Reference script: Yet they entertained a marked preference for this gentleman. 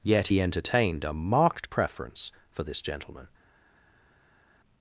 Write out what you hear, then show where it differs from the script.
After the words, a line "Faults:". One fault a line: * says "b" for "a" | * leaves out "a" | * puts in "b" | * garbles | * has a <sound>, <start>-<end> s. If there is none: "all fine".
Yet he entertained a marked preference for this gentleman.
Faults:
* says "he" for "they"